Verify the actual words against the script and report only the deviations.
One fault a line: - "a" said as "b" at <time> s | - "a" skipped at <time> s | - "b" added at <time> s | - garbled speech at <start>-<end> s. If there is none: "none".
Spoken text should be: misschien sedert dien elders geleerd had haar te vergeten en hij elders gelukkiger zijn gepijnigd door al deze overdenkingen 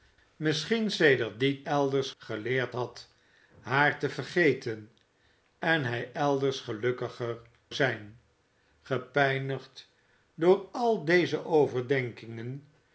none